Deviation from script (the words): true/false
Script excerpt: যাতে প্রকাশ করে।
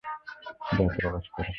false